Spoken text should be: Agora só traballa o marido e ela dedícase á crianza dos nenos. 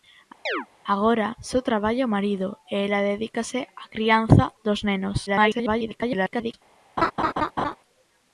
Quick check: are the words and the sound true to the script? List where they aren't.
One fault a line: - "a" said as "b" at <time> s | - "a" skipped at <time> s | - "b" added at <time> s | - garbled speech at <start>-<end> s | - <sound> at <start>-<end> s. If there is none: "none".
- chirp at 0.5-0.7 s
- garbled speech at 5.3-6.5 s
- laugh at 7.0-7.8 s